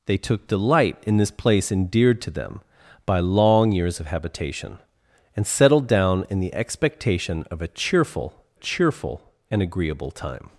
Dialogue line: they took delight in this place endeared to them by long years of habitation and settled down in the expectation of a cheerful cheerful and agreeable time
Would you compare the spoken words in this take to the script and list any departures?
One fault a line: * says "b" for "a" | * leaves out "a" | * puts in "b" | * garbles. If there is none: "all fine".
all fine